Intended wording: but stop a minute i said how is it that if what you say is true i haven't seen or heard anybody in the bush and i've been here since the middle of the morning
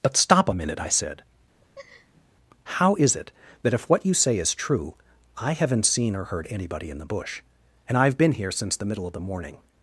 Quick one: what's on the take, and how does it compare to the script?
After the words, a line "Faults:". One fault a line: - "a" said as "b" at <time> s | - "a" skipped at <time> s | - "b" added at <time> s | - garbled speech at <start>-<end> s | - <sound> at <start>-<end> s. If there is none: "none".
but stop a minute i said how is it that if what you say is true i haven't seen or heard anybody in the bush and i've been here since the middle of the morning
Faults:
- laugh at 1.6-2.2 s